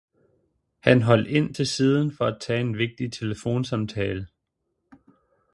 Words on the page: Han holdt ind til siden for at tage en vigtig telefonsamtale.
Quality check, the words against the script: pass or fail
pass